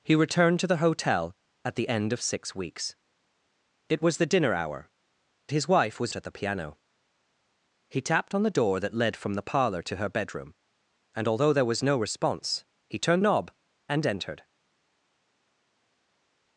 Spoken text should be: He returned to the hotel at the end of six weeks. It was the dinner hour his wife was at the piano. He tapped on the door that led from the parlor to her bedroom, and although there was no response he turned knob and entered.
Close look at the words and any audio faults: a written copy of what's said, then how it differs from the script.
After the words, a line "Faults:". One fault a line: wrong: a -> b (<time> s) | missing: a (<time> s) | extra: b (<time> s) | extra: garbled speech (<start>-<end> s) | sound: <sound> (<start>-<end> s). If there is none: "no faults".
He returned to the hotel at the end of six weeks. It was the dinner hour his wife was at the piano. He tapped on the door that led from the parlor to her bedroom, and although there was no response he turned knob and entered.
Faults:
no faults